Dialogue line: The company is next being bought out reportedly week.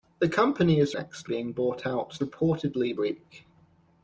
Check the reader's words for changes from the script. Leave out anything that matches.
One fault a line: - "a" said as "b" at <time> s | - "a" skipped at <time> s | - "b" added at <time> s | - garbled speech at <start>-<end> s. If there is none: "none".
none